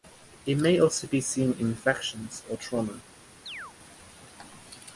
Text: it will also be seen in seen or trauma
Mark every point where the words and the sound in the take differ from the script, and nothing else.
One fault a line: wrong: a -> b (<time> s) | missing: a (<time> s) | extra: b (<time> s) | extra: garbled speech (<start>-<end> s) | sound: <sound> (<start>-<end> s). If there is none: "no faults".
wrong: will -> may (0.6 s)
wrong: seen -> infections (1.7 s)
sound: chirp (3.5-3.7 s)